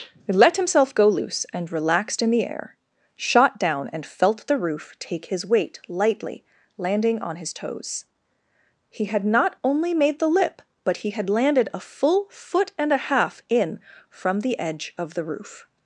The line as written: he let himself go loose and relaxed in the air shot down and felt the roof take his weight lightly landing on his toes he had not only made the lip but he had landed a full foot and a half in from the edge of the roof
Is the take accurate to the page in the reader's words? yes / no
yes